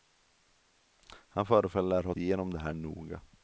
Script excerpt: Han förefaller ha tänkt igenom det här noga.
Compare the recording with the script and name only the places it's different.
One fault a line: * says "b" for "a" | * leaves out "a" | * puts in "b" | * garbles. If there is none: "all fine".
* leaves out "tänkt"